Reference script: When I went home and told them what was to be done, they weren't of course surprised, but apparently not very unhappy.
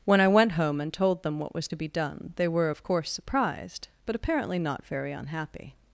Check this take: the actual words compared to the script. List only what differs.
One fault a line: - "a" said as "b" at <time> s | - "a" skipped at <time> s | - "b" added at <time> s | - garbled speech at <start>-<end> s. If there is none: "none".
- "weren't" said as "were" at 2.5 s